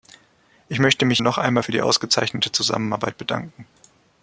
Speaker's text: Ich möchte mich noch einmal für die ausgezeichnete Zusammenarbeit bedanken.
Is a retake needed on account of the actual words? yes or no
no